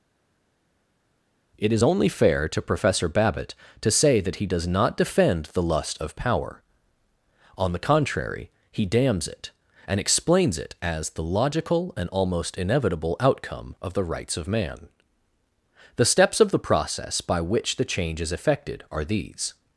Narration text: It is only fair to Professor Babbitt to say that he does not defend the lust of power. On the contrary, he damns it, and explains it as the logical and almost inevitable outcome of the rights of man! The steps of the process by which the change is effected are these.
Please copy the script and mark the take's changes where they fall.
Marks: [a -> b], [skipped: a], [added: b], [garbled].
It is only fair to Professor Babbitt to say that he does not defend the lust of power. On the contrary, he damns it, and explains it as the logical and almost inevitable outcome of the rights of man! The steps of the process by which the change is effected are these.